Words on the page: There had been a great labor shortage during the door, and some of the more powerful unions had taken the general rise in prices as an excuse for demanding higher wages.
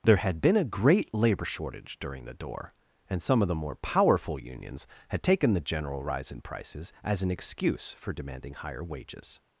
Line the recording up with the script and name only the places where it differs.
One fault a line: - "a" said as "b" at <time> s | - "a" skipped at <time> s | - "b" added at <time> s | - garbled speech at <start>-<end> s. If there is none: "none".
none